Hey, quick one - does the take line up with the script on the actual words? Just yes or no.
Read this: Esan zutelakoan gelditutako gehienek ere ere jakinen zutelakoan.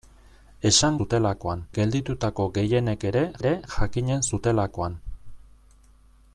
yes